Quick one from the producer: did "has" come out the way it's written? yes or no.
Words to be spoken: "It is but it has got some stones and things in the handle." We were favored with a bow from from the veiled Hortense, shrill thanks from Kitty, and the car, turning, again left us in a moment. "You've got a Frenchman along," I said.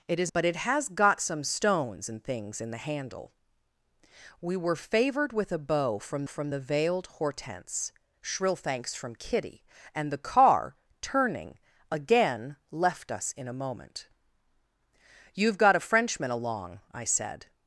yes